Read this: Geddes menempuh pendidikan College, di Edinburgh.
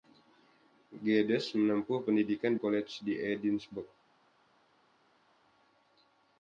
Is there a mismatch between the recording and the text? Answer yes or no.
no